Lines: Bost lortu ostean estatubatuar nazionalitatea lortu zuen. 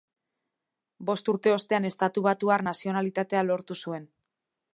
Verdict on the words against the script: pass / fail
fail